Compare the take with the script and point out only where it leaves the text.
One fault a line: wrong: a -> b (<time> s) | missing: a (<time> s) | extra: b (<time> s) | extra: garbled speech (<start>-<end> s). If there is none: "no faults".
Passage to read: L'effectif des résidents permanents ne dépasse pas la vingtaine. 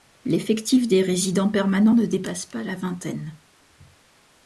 no faults